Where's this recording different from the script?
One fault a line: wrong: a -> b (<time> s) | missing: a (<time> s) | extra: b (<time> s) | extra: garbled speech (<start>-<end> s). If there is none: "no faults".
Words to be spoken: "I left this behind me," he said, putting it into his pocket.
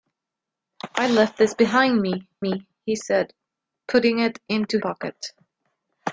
extra: me (2.4 s)
missing: his (4.8 s)